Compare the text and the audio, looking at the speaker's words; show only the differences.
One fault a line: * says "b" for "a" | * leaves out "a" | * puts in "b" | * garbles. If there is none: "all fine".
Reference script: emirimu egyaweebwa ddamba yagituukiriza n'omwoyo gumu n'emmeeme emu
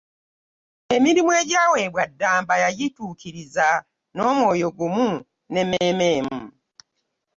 all fine